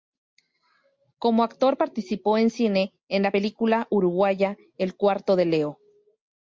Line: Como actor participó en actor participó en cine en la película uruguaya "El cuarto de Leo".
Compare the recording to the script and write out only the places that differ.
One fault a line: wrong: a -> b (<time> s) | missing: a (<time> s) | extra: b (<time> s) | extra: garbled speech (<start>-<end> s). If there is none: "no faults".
missing: actor participó en (2.5 s)